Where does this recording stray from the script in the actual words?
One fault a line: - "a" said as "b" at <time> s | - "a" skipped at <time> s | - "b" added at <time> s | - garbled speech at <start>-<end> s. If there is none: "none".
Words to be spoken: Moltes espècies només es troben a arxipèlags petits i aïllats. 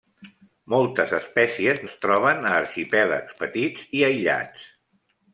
- "només" skipped at 1.8 s